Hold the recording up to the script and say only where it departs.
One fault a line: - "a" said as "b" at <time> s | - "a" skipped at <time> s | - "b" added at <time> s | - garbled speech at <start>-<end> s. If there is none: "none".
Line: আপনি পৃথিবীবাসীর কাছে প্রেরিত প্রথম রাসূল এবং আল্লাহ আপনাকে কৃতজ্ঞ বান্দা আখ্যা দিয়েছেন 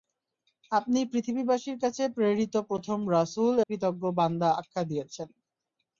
- "এবং আল্লাহ আপনাকে" skipped at 3.5 s